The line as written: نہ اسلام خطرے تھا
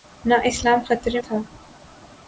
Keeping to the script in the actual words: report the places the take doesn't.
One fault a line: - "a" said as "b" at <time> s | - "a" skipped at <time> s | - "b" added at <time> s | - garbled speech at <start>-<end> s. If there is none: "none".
none